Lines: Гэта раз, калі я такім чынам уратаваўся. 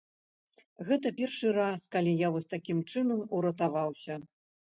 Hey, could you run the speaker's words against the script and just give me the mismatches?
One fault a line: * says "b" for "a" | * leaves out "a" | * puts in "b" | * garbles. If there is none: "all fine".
* puts in "першы"
* puts in "вось"